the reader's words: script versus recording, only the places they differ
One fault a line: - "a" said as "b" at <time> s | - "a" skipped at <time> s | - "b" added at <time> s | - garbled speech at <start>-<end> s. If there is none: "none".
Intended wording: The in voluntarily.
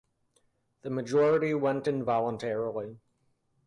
- "majority went" added at 0.9 s